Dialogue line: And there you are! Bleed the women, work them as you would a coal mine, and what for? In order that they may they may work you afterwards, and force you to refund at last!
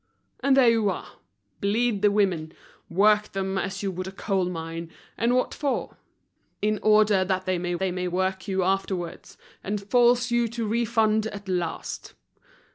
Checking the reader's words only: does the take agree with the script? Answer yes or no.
yes